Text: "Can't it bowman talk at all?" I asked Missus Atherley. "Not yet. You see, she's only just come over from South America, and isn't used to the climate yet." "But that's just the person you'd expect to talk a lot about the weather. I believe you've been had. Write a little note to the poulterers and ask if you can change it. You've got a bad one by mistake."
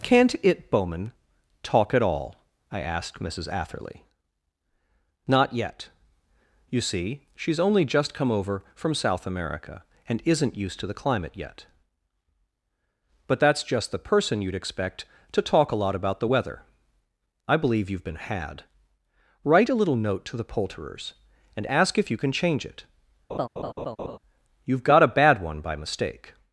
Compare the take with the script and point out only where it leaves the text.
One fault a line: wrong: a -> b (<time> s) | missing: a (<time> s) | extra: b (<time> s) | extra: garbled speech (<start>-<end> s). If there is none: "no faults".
no faults